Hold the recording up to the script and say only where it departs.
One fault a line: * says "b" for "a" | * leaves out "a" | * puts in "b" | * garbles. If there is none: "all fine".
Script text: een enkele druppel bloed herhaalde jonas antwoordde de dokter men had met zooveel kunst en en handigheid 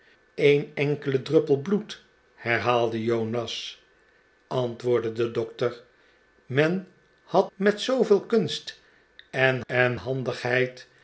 all fine